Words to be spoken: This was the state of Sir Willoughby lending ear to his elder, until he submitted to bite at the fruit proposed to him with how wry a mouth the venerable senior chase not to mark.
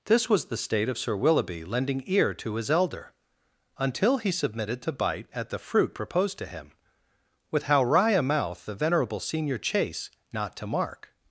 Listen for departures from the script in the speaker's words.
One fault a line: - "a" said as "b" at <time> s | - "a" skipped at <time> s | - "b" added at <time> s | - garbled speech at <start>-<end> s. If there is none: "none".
none